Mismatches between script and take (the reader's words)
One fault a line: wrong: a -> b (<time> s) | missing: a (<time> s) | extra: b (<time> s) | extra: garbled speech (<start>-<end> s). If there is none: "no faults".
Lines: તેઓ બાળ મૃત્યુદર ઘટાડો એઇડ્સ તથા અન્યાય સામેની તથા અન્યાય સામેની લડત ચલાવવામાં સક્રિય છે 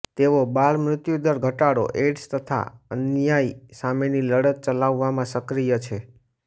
missing: તથા અન્યાય સામેની (4.3 s)